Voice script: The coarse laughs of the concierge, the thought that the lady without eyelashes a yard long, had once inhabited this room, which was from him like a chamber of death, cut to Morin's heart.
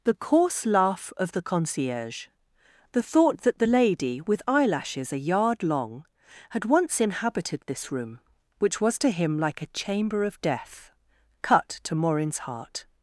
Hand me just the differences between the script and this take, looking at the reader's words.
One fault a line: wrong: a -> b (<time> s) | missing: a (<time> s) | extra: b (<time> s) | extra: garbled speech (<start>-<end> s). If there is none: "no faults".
wrong: laughs -> laugh (0.7 s)
wrong: without -> with (4.2 s)
wrong: from -> to (9.0 s)